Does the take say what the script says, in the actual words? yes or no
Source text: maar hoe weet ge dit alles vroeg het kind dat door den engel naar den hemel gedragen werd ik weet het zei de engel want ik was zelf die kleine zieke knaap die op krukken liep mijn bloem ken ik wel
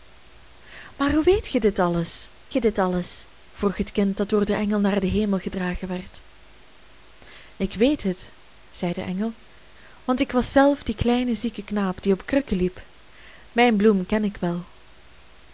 no